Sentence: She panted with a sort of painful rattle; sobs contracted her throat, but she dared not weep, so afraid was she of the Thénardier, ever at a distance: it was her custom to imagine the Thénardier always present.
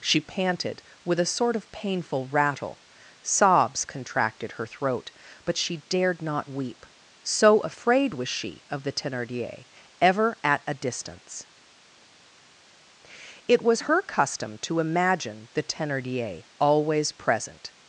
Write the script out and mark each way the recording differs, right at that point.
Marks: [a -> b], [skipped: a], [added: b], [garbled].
She panted with a sort of painful rattle; sobs contracted her throat, but she dared not weep, so afraid was she of the Thénardier, ever at a distance: it was her custom to imagine the Thénardier always present.